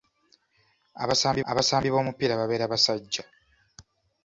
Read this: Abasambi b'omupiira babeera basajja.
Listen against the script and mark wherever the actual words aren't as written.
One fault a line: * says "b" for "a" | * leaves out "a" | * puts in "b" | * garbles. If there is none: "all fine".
* puts in "abasambi"